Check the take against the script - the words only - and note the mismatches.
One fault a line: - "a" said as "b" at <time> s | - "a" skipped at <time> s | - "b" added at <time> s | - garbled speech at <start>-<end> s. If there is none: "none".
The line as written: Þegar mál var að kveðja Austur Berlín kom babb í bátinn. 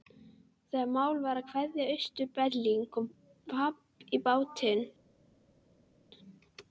none